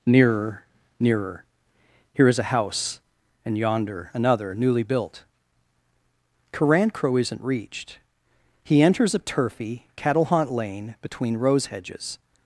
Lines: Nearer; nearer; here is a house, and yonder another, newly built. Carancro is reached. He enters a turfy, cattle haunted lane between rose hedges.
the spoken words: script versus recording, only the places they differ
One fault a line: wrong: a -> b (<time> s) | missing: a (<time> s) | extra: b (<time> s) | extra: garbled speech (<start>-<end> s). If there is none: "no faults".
wrong: is -> isn't (7.2 s)
wrong: haunted -> haunt (10.2 s)